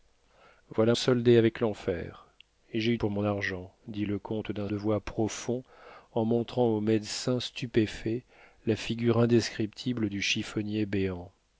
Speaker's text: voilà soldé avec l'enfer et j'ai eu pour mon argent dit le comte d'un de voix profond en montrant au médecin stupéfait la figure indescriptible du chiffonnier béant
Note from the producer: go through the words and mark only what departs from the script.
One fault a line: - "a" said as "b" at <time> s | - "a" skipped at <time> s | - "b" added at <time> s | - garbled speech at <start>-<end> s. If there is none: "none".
none